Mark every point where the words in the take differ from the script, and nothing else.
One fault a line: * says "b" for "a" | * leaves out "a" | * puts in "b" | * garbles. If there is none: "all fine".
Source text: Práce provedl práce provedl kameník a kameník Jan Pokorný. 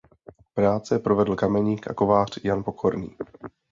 * leaves out "práce provedl"
* says "kovář" for "kameník"